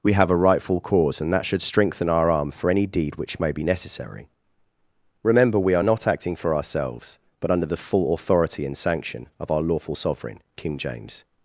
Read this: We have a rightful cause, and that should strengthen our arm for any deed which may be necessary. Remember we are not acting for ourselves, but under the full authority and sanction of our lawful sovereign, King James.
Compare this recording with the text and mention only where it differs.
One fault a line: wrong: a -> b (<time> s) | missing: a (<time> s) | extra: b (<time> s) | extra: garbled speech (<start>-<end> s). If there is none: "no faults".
no faults